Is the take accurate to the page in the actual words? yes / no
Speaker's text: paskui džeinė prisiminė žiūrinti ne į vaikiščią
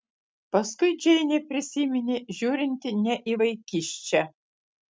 yes